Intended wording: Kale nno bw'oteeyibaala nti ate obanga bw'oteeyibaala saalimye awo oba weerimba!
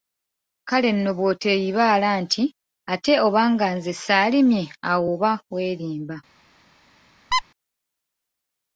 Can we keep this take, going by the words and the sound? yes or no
no